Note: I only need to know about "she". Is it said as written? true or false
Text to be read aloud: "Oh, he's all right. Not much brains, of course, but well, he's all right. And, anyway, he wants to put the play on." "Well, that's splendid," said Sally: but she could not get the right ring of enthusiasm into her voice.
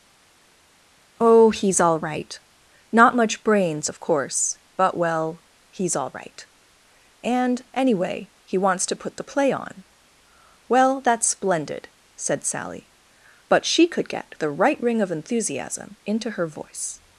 true